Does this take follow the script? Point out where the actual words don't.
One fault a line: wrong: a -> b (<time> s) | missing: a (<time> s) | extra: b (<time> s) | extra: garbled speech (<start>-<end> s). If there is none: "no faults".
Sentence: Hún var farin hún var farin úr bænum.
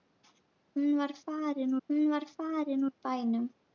no faults